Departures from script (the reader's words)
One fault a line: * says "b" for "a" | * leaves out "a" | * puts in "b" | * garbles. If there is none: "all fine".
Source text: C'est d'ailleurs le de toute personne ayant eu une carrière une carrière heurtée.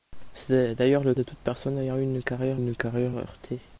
all fine